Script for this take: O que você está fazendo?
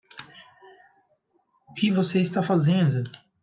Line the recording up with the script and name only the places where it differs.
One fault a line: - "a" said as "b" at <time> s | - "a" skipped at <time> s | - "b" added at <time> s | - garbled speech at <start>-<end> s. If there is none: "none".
none